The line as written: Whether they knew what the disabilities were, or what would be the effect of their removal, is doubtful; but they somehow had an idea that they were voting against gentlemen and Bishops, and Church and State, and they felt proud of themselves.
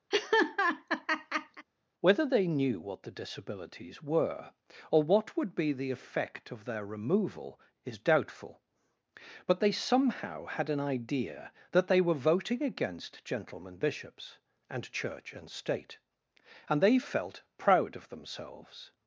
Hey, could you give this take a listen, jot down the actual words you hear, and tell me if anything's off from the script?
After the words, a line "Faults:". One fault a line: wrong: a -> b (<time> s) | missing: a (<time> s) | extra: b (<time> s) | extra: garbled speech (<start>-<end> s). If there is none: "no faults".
Whether they knew what the disabilities were, or what would be the effect of their removal, is doubtful; but they somehow had an idea that they were voting against gentlemen Bishops, and Church and State, and they felt proud of themselves.
Faults:
missing: and (13.8 s)